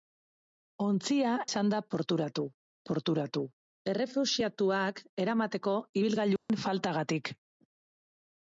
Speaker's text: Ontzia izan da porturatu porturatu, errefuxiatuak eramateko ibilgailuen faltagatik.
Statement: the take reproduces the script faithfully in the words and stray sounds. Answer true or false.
false